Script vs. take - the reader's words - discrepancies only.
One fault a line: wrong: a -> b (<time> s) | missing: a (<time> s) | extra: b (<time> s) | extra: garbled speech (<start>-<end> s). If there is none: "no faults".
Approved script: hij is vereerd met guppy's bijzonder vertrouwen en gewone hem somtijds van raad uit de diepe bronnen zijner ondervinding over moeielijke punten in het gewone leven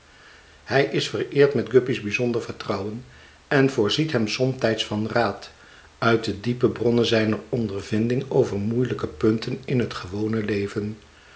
wrong: gewone -> voorziet (3.7 s)